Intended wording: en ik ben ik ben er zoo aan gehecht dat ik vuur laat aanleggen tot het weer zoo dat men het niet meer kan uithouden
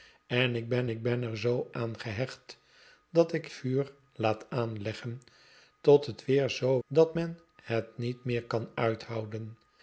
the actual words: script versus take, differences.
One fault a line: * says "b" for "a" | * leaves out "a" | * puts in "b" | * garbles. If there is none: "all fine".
all fine